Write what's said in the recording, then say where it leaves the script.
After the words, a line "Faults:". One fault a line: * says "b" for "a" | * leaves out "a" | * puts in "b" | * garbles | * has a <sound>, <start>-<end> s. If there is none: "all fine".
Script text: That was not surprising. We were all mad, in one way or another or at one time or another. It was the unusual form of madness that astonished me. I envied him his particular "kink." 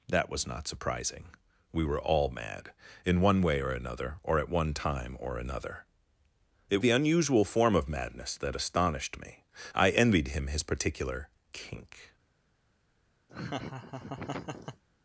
That was not surprising. We were all mad, in one way or another or at one time or another. It the unusual form of madness that astonished me. I envied him his particular "kink."
Faults:
* leaves out "was"
* has a laugh, 13.3-14.8 s